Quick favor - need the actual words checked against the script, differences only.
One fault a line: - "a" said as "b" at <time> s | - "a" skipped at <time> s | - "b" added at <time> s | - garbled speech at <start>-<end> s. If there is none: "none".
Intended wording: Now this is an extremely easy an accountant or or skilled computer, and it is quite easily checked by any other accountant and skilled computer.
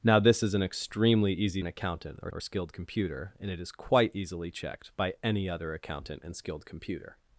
none